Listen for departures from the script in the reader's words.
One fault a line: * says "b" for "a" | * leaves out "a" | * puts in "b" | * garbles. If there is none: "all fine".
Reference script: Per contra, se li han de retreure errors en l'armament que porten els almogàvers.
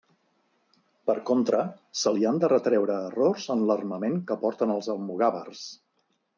all fine